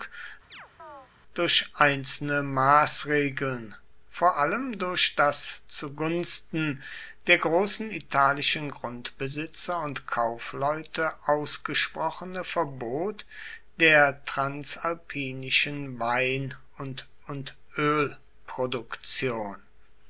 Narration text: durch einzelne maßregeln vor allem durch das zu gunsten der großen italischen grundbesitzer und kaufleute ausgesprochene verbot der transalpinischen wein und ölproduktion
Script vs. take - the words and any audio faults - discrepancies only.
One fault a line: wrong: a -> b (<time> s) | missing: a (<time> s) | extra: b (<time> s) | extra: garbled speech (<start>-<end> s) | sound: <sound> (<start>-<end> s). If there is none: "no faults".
sound: chirp (0.5-1.1 s)
extra: und (17.3 s)